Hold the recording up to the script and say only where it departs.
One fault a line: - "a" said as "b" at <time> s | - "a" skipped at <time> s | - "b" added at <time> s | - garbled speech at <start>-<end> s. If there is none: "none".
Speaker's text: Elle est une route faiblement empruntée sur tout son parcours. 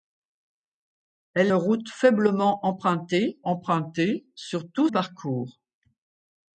- "est une" skipped at 1.5 s
- "empruntée" added at 3.5 s
- "son" skipped at 4.9 s